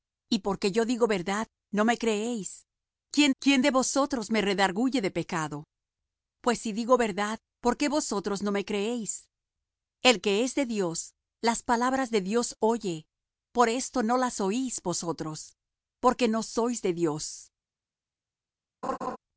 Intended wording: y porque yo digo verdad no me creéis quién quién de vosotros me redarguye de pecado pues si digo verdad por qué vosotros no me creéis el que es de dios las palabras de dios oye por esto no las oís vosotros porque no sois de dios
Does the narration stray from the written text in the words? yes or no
no